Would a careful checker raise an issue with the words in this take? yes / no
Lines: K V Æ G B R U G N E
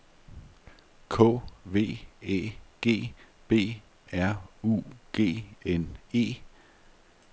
no